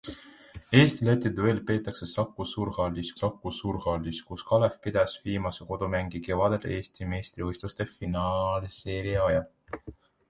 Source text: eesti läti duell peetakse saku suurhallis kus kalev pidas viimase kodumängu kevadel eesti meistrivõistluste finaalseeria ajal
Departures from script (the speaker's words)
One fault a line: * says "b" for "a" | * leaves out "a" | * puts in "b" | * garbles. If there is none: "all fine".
* puts in "saku suurhallis"